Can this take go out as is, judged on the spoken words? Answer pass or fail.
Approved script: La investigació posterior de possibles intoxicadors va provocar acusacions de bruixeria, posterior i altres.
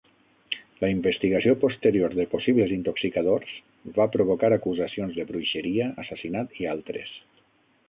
fail